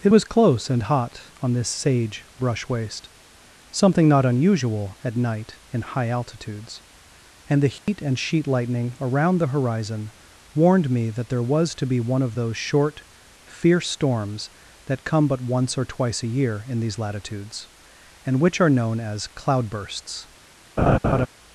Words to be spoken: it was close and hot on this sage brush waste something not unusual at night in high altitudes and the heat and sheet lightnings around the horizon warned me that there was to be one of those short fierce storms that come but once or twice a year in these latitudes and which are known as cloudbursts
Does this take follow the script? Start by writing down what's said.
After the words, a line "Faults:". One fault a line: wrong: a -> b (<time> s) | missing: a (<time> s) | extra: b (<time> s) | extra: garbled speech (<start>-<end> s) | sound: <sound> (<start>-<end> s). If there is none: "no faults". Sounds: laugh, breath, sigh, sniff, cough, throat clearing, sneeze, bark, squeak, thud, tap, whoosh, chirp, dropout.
it was close and hot on this sage brush waste something not unusual at night in high altitudes and the heat and sheet lightning around the horizon warned me that there was to be one of those short fierce storms that come but once or twice a year in these latitudes and which are known as cloudbursts
Faults:
sound: dropout (7.8-7.9 s)
wrong: lightnings -> lightning (8.5 s)
sound: laugh (20.8-21.3 s)